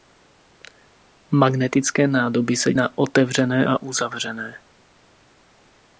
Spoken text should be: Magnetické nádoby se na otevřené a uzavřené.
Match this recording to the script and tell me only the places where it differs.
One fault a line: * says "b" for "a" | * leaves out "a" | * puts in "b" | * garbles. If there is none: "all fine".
all fine